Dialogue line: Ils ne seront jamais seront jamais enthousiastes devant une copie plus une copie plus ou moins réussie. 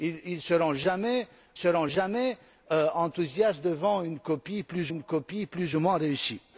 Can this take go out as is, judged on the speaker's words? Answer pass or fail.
pass